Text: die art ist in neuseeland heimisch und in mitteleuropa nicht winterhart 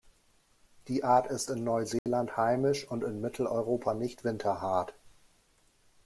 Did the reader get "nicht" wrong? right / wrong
right